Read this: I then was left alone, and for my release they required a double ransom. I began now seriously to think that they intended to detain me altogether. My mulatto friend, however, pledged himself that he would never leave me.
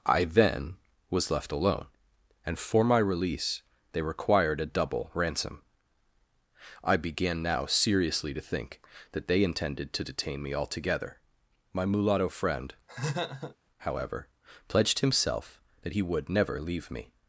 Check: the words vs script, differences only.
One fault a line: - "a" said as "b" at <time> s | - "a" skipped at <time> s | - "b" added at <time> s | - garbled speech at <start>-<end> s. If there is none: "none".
none